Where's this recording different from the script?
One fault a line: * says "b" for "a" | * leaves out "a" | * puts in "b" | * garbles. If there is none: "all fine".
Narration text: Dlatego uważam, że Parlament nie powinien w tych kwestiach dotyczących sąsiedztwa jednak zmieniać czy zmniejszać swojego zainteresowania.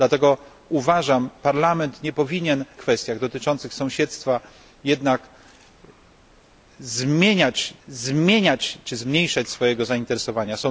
* leaves out "że"
* leaves out "w tych"
* puts in "zmieniać"